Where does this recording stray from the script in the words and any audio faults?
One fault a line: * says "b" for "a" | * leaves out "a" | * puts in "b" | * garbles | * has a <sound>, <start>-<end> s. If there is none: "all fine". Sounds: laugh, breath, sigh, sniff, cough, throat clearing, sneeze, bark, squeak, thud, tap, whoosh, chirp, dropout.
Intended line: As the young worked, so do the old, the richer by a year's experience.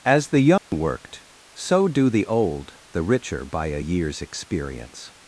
* has a dropout, 0.6-0.7 s